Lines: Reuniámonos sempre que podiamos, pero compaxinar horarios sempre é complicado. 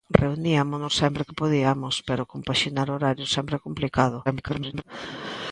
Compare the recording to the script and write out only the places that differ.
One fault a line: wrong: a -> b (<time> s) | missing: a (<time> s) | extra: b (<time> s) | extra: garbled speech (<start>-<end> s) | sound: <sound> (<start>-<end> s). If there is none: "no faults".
extra: garbled speech (4.3-4.8 s)